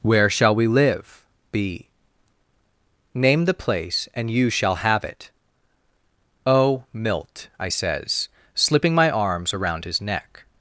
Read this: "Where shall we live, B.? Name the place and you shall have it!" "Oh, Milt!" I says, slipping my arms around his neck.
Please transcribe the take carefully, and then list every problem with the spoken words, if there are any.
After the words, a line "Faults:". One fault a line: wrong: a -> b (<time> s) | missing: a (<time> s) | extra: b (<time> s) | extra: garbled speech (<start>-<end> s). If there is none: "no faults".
"Where shall we live, B.? Name the place and you shall have it!" "Oh, Milt!" I says, slipping my arms around his neck.
Faults:
no faults